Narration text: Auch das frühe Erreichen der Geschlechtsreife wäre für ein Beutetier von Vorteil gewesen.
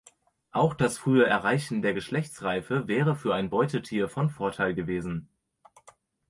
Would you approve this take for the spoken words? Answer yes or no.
yes